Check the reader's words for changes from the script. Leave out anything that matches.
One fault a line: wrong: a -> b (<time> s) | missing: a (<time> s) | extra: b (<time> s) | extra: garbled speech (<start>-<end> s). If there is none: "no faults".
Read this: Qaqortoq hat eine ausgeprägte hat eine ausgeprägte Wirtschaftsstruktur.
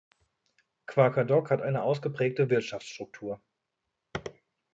missing: hat eine ausgeprägte (2.5 s)